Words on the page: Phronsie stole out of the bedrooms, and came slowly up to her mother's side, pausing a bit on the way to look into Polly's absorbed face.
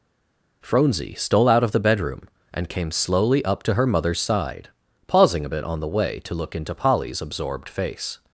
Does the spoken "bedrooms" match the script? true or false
false